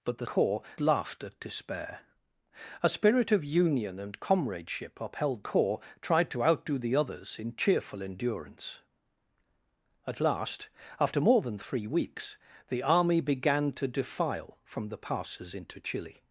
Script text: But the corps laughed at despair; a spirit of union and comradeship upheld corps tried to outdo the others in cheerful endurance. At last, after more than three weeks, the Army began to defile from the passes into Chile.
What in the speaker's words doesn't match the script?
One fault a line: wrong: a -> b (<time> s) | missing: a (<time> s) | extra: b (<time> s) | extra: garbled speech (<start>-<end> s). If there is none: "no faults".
no faults